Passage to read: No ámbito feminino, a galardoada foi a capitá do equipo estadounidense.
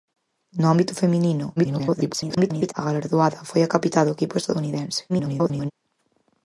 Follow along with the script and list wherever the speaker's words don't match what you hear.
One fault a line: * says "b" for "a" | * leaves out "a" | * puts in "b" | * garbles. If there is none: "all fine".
* garbles
* garbles